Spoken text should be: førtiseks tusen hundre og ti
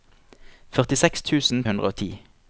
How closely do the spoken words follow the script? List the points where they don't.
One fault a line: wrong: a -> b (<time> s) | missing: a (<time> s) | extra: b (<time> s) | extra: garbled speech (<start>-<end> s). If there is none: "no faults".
no faults